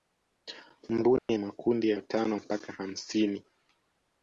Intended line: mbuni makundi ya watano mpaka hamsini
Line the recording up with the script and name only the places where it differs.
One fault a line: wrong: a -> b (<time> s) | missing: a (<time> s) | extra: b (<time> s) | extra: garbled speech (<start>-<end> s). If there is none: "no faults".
no faults